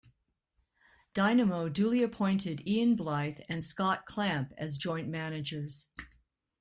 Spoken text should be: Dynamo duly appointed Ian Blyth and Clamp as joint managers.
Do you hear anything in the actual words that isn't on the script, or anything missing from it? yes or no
yes